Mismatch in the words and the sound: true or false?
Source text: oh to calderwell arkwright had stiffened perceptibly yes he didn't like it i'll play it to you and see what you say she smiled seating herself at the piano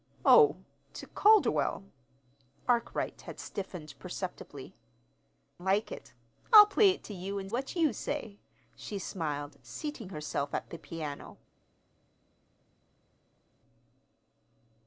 true